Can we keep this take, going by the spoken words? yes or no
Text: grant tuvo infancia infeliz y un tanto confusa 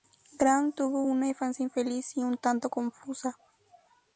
no